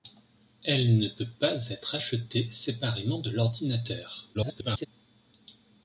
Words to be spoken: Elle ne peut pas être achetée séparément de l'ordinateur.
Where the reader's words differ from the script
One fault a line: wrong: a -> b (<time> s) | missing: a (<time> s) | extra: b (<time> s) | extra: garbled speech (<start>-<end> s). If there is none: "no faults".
extra: garbled speech (4.3-4.9 s)